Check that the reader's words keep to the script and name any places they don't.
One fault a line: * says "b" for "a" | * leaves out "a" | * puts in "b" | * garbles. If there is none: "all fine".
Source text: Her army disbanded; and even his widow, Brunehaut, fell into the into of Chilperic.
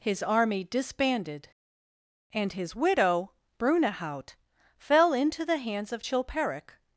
* says "His" for "Her"
* leaves out "even"
* says "hands" for "into"